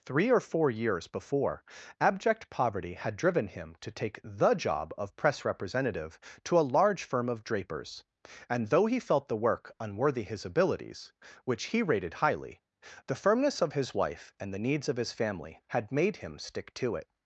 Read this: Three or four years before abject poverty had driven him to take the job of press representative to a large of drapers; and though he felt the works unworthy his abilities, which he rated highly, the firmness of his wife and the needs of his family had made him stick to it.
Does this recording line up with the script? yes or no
no